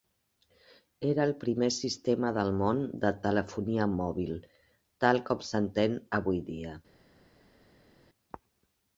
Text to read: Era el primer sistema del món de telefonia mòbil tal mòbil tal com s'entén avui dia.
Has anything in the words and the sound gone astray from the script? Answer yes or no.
yes